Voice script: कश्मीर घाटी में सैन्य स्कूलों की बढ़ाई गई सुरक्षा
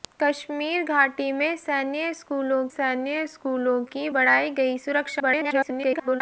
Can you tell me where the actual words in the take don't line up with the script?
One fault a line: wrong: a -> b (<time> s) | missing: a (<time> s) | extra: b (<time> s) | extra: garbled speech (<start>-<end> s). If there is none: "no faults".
extra: सैन्य स्कूलों (2.7 s)
extra: garbled speech (5.2-6.2 s)